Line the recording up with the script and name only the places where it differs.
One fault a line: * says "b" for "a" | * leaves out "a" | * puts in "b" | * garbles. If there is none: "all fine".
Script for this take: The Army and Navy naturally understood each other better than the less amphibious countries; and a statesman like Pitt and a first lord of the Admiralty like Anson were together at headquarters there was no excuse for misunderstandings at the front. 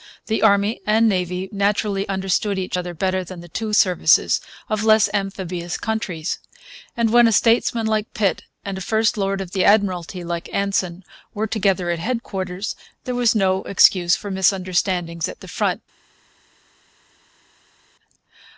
* puts in "two services of"
* puts in "when"